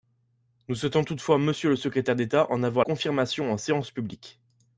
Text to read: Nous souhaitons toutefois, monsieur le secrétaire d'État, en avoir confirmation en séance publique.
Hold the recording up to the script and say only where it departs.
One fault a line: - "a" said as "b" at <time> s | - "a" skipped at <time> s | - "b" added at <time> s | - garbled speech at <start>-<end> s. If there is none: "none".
none